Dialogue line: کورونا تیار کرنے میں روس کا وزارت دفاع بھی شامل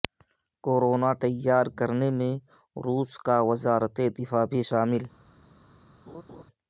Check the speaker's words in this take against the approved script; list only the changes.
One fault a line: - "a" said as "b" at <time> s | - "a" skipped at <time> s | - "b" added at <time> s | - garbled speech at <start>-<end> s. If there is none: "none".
none